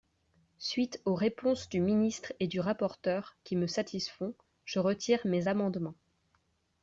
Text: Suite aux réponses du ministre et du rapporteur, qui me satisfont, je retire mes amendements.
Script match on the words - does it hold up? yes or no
yes